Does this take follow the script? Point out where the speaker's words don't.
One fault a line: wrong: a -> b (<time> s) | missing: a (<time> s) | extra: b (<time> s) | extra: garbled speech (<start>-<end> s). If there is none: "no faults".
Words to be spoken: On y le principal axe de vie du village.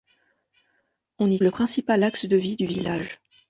no faults